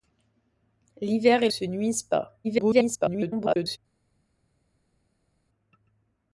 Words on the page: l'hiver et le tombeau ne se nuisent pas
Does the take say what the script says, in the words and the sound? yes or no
no